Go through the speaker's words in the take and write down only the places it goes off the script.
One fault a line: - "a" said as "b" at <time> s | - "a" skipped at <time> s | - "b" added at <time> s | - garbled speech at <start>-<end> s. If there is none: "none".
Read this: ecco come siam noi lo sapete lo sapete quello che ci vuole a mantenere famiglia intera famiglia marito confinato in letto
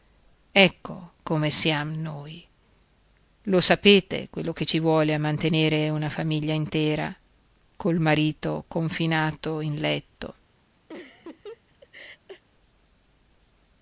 - "lo sapete" skipped at 4.3 s
- "una" added at 5.9 s
- "famiglia" said as "col" at 7.8 s